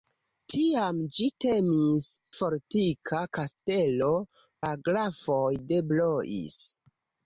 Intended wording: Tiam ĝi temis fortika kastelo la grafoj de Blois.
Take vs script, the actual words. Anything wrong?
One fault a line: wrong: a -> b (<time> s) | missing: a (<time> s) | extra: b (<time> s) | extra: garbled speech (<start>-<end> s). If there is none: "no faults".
no faults